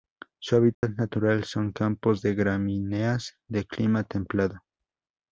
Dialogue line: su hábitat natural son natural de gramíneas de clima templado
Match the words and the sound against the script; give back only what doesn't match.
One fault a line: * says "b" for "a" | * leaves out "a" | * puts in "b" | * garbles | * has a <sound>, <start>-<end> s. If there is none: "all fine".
* has a dropout, 0.7-0.8 s
* says "campos" for "natural"